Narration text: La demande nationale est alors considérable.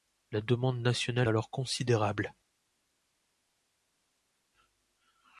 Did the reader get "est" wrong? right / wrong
wrong